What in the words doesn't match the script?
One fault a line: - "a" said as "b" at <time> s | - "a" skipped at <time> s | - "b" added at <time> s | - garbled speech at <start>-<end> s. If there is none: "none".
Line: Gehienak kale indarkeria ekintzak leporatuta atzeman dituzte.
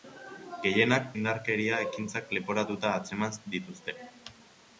- "kale" skipped at 1.1 s